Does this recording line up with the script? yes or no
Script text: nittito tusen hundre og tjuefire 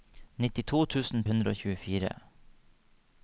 yes